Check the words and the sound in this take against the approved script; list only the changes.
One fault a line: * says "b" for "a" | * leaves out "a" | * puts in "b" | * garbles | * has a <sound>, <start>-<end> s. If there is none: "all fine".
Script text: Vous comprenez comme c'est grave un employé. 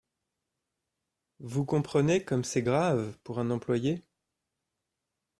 * puts in "pour"